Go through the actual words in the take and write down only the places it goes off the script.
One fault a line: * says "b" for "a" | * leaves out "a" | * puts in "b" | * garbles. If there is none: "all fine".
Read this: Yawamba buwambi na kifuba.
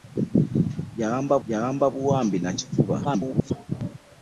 * puts in "yawamba"
* garbles